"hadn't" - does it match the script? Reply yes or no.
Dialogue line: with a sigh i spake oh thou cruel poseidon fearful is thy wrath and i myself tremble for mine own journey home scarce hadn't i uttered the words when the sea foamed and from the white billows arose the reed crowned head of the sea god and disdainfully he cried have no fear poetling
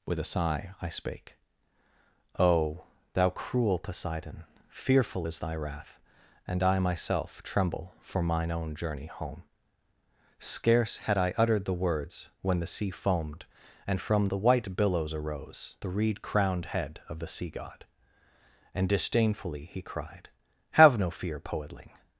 no